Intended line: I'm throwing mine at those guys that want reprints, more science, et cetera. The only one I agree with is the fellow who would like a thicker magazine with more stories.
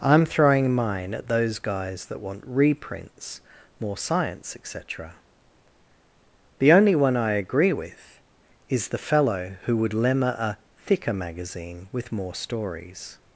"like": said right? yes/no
no